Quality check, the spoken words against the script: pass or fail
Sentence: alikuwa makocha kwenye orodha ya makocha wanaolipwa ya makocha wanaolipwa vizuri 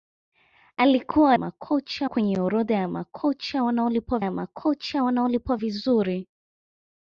pass